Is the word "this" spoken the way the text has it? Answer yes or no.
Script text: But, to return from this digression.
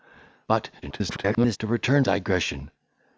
no